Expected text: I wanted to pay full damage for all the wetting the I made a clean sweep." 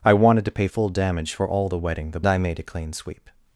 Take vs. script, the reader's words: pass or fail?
pass